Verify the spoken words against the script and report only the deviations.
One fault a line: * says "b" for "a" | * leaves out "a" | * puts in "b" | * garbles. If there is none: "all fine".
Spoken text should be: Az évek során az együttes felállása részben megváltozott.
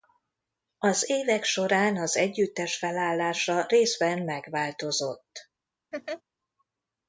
all fine